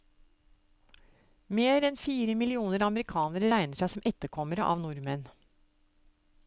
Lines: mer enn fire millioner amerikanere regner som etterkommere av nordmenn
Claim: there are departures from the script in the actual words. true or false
true